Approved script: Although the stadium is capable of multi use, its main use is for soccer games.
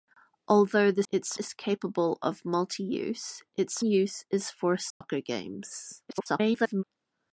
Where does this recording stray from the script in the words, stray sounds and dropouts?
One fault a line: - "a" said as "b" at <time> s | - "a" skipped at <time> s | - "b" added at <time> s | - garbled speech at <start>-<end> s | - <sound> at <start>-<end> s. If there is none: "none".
- "stadium" said as "its" at 1.1 s
- "main" skipped at 3.8 s
- dropout at 4.9-5.0 s
- garbled speech at 6.1-6.8 s